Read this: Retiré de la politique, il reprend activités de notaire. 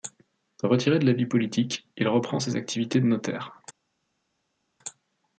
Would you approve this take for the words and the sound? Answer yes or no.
no